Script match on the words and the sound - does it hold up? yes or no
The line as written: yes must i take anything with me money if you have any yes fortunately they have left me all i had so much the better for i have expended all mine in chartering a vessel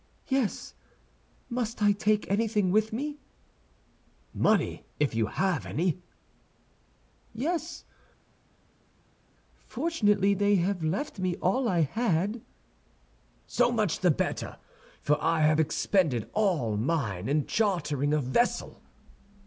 yes